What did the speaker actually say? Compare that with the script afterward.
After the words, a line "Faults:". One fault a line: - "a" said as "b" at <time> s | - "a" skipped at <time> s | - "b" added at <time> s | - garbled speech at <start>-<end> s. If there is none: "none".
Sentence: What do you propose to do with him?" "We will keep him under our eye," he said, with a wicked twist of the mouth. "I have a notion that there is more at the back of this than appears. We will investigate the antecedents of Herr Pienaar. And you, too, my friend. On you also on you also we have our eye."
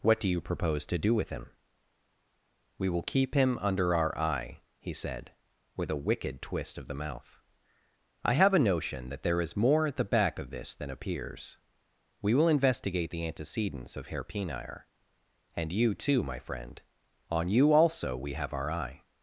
What do you propose to do with him?" "We will keep him under our eye," he said, with a wicked twist of the mouth. "I have a notion that there is more at the back of this than appears. We will investigate the antecedents of Herr Pienaar. And you, too, my friend. On you also we have our eye."
Faults:
- "on you also" skipped at 18.1 s